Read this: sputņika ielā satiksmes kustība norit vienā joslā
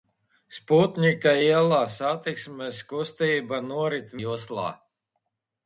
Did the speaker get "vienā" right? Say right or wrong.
wrong